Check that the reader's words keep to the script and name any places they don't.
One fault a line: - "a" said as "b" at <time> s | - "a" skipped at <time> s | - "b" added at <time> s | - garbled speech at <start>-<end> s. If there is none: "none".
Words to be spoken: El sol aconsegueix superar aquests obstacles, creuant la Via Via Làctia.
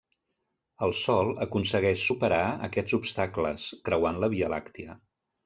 - "Via" skipped at 4.5 s